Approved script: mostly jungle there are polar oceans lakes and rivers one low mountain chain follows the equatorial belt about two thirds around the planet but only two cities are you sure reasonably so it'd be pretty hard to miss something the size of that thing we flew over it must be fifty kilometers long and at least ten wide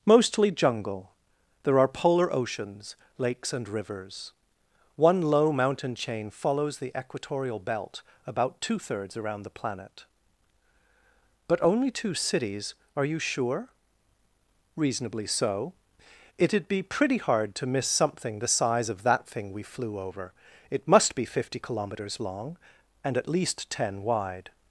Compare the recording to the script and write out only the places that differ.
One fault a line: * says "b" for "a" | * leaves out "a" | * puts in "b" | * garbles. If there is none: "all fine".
all fine